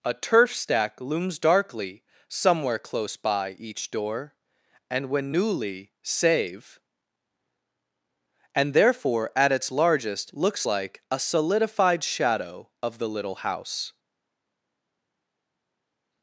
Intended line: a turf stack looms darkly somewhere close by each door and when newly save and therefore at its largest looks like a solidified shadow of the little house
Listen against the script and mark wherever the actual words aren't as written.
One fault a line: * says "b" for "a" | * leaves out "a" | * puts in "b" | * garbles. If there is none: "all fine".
all fine